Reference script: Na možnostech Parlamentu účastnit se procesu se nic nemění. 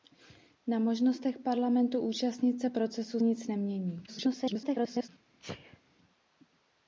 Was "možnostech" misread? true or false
false